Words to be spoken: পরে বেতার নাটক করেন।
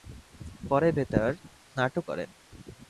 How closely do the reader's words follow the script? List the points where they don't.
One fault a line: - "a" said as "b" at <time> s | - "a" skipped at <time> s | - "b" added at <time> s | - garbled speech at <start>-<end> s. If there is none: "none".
none